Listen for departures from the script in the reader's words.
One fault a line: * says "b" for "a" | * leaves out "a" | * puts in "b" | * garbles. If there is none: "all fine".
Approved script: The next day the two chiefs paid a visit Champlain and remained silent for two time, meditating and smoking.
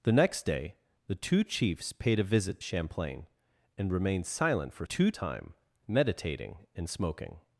all fine